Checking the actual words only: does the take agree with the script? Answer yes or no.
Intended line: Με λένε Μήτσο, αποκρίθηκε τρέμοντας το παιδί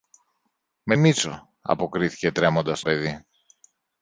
no